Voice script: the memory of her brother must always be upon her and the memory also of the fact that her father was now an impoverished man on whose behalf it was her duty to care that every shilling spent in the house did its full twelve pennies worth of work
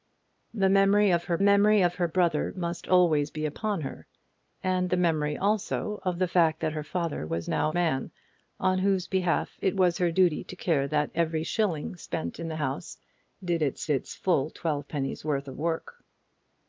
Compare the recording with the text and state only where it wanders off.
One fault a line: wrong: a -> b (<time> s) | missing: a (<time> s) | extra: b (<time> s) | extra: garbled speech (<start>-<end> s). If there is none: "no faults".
extra: memory of her (1.4 s)
missing: an impoverished (7.7 s)
extra: its (13.9 s)